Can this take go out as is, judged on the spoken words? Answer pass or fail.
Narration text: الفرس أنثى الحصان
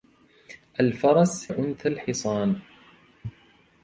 pass